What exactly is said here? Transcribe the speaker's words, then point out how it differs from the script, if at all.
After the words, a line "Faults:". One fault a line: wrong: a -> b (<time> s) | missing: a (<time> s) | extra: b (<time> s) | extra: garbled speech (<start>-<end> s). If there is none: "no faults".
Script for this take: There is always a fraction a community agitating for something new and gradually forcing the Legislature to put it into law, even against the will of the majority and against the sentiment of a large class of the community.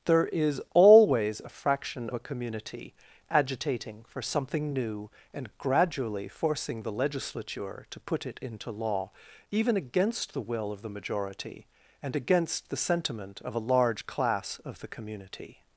There is always a fraction a community agitating for something new and gradually forcing the Legislature to put it into law, even against the will of the majority and against the sentiment of a large class of the community.
Faults:
no faults